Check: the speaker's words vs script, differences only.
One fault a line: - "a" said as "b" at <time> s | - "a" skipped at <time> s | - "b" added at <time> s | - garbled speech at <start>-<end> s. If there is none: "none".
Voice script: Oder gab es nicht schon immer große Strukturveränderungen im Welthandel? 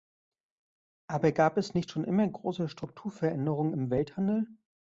- "Oder" said as "Aber" at 1.1 s